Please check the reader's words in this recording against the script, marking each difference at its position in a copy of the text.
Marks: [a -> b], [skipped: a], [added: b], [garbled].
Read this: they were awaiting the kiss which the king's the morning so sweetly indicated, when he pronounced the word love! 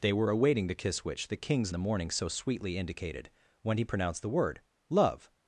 they were awaiting the kiss which the king's the morning so sweetly indicated, when he pronounced the word love!